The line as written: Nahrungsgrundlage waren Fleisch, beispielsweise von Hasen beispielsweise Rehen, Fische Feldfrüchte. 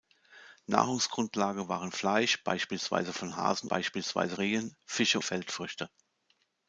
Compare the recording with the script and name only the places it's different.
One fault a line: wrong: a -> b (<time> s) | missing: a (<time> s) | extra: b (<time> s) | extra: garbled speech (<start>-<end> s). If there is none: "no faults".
no faults